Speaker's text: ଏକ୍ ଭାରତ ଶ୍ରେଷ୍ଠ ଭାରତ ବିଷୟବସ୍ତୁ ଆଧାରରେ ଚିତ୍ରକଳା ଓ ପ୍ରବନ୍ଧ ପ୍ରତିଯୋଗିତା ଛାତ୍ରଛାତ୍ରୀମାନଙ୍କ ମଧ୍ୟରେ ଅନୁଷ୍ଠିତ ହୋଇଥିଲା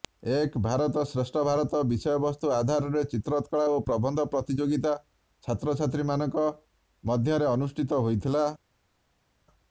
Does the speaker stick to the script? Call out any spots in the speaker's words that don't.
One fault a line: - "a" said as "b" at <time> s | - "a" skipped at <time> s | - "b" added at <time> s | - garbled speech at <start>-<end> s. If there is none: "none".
none